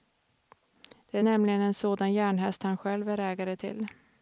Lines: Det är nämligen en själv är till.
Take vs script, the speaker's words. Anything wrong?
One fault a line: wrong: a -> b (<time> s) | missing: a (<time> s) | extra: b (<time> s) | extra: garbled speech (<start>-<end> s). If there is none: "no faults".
extra: sådan järnhäst han (1.7 s)
extra: ägare (3.2 s)